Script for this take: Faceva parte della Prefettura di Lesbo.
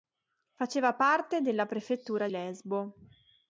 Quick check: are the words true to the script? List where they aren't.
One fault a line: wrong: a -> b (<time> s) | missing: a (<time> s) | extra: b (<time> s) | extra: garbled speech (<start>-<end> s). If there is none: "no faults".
missing: di (2.3 s)